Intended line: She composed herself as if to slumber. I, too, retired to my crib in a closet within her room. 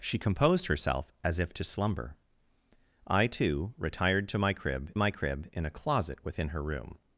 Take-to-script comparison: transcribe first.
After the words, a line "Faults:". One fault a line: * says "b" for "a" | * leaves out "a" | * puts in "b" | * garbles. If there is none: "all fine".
She composed herself as if to slumber. I, too, retired to my crib my crib in a closet within her room.
Faults:
* puts in "my crib"